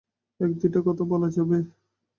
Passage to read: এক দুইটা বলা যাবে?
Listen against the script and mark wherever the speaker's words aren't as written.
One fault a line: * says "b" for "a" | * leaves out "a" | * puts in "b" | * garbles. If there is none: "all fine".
* puts in "কথা"